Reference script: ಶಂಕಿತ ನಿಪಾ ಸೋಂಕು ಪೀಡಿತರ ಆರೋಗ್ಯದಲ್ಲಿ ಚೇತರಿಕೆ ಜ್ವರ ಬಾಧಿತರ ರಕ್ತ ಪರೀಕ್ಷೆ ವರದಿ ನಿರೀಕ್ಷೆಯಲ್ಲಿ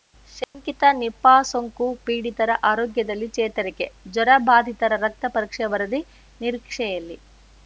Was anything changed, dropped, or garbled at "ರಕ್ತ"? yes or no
no